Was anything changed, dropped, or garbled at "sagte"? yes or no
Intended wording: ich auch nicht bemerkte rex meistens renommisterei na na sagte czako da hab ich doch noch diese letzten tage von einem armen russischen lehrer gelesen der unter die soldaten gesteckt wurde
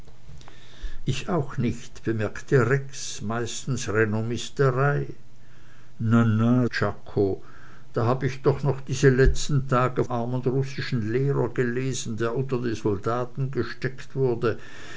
yes